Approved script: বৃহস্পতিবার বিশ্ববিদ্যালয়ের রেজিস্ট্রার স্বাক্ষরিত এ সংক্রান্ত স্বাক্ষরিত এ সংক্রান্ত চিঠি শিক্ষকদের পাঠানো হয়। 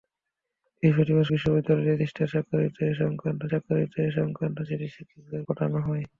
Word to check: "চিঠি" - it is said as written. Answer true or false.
true